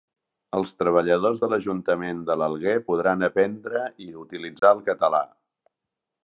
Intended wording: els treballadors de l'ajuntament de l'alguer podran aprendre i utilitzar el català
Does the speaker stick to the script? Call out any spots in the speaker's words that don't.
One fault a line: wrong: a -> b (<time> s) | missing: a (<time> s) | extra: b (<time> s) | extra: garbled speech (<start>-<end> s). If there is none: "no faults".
no faults